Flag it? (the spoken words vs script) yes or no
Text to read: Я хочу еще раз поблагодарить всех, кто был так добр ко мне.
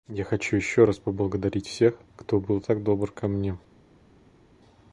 no